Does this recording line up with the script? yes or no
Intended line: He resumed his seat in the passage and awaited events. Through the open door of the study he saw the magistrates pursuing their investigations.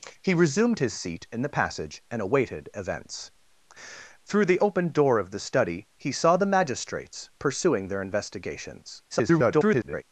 no